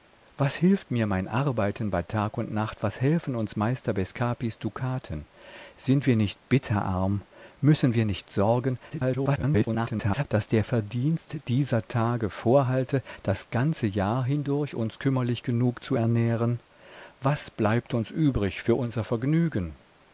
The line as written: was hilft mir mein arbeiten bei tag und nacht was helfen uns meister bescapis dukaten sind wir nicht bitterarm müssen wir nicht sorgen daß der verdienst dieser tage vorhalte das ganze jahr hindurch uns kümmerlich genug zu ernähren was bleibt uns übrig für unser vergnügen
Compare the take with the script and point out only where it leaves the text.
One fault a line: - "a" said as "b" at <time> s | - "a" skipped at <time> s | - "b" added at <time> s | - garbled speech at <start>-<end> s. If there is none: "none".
- garbled speech at 8.9-10.2 s